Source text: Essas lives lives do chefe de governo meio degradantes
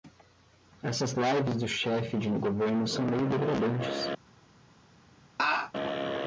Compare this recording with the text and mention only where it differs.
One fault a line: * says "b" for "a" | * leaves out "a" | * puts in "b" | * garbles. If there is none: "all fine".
* leaves out "lives"
* puts in "são"